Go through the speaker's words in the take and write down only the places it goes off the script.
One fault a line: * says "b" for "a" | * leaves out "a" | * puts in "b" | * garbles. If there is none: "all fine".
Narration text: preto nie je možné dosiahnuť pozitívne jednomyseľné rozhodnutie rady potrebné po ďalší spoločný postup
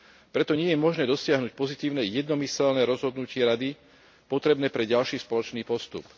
* says "pre" for "po"